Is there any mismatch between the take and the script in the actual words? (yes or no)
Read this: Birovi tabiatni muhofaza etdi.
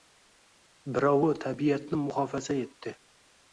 no